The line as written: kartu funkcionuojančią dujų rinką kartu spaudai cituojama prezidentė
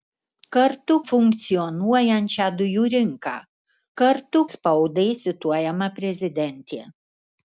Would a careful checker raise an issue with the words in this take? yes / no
no